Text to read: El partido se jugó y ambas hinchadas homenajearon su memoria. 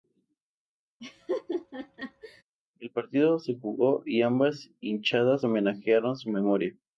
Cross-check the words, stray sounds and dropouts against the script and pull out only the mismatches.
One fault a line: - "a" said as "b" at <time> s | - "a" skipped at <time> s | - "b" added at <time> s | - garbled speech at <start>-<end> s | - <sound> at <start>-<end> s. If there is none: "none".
- laugh at 1.0-2.4 s